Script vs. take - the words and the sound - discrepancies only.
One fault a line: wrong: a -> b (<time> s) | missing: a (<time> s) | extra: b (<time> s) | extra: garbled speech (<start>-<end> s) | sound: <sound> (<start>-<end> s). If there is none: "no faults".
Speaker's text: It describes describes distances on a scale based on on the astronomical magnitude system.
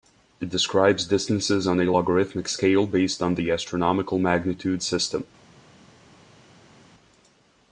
missing: describes (1.1 s)
extra: logarithmic (1.9 s)
missing: on (3.3 s)